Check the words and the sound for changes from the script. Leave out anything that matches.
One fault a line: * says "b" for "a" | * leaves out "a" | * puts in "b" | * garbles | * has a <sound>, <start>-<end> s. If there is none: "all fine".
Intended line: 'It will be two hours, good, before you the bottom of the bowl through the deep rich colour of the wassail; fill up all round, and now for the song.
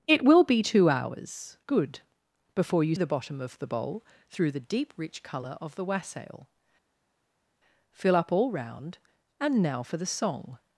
all fine